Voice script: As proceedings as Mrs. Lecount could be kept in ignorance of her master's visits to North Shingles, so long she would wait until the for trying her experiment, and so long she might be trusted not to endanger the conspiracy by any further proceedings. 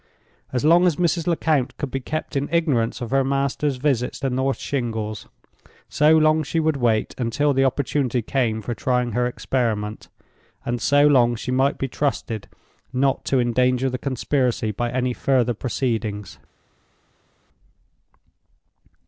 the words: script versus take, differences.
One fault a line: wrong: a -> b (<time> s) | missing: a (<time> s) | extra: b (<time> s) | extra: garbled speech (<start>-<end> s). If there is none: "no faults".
wrong: proceedings -> long (0.7 s)
extra: opportunity came (7.6 s)